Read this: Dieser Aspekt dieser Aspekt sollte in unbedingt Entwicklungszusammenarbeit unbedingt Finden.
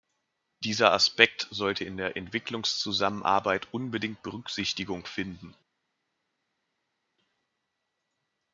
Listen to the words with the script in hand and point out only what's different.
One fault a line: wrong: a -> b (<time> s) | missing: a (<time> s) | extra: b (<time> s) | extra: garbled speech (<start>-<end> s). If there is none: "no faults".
missing: dieser Aspekt (1.5 s)
wrong: unbedingt -> der (2.0 s)
extra: Berücksichtigung (4.2 s)